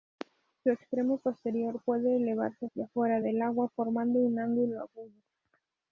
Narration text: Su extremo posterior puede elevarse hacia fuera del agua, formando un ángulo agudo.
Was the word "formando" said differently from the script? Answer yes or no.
no